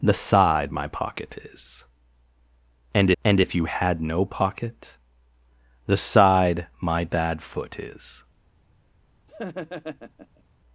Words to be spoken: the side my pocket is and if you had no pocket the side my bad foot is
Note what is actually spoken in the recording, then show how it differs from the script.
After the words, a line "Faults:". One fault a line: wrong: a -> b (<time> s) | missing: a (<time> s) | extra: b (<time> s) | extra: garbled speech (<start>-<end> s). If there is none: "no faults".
the side my pocket is and and if you had no pocket the side my bad foot is
Faults:
extra: and (3.2 s)